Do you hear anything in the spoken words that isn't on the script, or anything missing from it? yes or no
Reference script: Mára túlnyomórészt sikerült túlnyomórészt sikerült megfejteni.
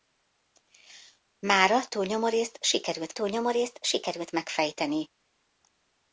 no